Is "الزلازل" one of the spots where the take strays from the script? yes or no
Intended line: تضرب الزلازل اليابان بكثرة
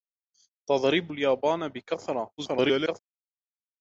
yes